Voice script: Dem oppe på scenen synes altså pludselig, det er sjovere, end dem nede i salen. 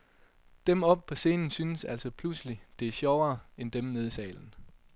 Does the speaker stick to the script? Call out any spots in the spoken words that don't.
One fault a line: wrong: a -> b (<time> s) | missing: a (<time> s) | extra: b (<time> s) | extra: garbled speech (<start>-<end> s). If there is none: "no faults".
no faults